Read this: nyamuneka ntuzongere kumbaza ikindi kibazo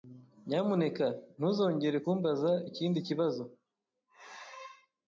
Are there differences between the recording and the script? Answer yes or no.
no